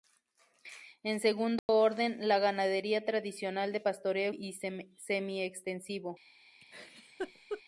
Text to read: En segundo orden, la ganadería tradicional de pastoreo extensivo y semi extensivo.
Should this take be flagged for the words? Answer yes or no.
yes